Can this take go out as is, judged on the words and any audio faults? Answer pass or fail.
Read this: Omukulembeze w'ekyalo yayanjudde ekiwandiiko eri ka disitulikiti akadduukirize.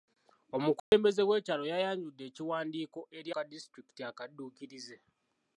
fail